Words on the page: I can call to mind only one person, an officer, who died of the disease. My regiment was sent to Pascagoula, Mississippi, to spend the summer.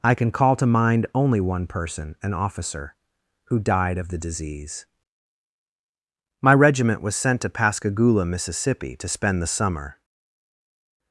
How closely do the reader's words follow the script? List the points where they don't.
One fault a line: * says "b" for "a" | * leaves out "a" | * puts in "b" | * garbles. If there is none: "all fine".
all fine